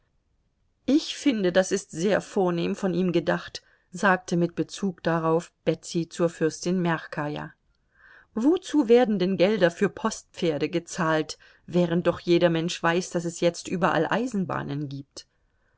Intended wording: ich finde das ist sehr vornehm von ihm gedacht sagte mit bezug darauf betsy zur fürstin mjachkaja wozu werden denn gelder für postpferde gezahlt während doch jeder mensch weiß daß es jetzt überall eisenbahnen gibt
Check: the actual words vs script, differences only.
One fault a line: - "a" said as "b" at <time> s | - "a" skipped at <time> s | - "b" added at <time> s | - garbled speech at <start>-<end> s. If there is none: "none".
none